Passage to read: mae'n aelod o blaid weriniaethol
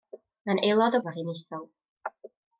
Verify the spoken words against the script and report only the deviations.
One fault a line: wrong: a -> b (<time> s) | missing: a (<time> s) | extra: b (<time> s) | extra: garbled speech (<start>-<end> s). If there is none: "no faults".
missing: blaid (1.0 s)